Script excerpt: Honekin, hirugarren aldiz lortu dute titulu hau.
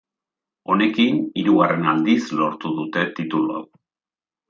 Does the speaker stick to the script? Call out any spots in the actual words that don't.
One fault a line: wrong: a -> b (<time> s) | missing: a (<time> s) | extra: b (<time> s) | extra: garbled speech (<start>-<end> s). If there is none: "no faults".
no faults